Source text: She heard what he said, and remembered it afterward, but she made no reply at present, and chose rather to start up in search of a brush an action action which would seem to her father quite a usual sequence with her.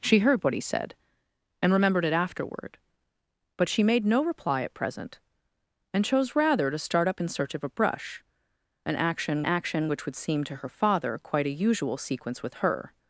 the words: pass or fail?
pass